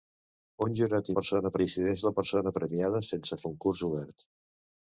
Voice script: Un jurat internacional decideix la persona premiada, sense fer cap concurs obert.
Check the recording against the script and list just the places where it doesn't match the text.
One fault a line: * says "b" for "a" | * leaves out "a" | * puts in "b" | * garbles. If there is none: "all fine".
* says "persona" for "internacional"
* leaves out "fer cap"